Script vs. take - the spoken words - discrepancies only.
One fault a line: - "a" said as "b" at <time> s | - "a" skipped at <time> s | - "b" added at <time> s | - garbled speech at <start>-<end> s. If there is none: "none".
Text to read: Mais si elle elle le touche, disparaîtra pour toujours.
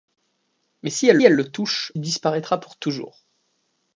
none